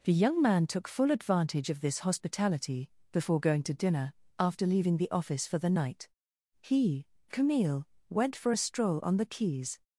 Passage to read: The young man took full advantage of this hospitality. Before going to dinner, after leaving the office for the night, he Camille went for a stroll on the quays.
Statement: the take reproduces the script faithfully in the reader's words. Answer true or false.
true